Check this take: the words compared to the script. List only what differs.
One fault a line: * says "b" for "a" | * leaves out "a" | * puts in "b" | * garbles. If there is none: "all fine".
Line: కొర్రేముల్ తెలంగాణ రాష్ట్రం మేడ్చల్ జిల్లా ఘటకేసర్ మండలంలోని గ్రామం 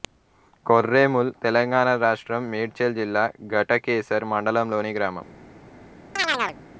all fine